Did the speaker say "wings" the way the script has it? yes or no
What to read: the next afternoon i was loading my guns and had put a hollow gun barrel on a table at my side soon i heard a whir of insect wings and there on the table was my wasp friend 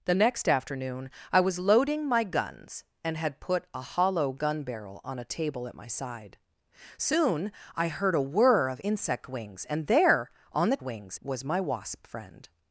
yes